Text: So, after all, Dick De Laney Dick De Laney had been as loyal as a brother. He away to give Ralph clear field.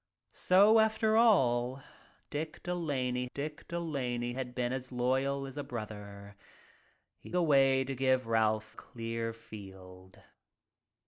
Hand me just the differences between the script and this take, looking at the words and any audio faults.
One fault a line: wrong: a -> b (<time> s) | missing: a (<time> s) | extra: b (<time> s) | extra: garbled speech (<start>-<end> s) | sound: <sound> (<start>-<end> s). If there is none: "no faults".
no faults